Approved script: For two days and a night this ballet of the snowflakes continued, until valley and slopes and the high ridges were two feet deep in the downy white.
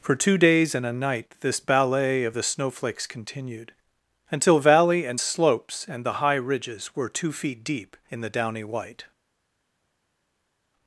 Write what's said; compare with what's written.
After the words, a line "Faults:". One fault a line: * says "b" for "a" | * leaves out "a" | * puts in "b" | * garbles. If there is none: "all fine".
For two days and a night this ballet of the snowflakes continued, until valley and slopes and the high ridges were two feet deep in the downy white.
Faults:
all fine